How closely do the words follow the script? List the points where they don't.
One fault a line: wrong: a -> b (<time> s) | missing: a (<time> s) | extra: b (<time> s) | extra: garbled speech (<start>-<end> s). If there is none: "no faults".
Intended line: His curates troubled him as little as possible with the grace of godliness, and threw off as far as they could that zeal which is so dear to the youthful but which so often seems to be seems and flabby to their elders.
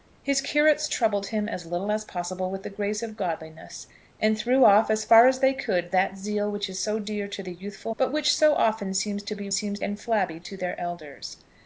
no faults